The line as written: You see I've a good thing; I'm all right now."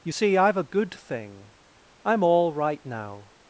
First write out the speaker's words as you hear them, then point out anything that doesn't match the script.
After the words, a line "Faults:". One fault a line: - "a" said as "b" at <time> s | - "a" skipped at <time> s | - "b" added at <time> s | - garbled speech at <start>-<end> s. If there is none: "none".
You see I've a good thing; I'm all right now."
Faults:
none